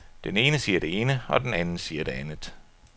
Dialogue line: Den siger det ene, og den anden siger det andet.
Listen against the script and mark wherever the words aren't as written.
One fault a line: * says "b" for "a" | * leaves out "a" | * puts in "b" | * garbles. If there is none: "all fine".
* puts in "ene"